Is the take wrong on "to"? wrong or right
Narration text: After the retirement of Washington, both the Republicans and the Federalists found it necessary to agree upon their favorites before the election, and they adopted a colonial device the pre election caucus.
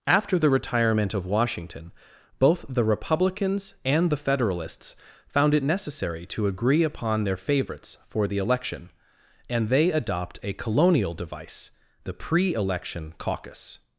right